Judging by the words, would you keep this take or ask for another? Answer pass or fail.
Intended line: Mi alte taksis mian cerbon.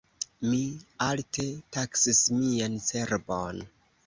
pass